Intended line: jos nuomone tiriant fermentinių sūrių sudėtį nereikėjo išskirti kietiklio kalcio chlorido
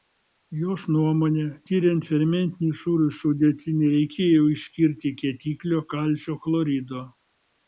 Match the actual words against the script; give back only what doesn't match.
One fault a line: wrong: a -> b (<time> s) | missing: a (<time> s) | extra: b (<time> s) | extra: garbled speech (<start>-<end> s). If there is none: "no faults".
no faults